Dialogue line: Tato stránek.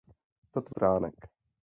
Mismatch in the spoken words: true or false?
false